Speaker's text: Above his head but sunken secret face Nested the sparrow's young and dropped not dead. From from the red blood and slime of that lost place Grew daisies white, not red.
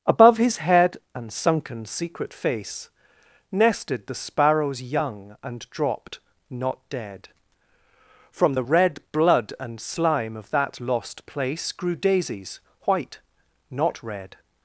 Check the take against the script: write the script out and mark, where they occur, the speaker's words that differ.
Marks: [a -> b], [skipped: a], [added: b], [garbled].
Above his head [but -> and] sunken secret face Nested the sparrow's young and dropped not dead. From [skipped: from] the red blood and slime of that lost place Grew daisies white, not red.